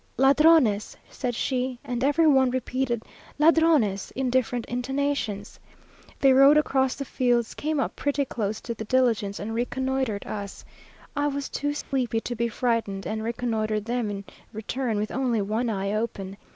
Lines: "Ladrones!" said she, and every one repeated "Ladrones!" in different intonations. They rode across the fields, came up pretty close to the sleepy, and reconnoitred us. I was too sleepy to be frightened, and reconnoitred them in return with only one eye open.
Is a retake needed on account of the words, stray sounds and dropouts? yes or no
yes